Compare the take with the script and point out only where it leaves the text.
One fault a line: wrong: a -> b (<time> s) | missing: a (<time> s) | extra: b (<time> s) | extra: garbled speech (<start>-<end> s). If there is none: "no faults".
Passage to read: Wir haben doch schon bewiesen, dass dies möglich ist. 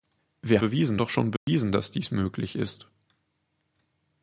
wrong: haben -> bewiesen (0.6 s)